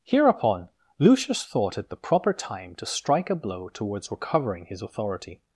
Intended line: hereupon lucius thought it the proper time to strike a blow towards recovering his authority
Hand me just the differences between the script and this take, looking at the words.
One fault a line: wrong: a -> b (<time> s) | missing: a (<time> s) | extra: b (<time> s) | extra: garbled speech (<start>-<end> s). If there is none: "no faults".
no faults